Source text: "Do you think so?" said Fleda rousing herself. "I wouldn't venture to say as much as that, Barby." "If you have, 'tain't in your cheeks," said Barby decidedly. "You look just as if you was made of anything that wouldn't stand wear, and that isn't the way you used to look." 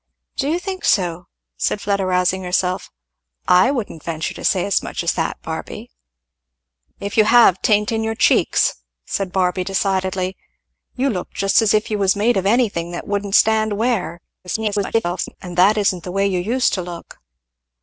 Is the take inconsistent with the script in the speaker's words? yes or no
yes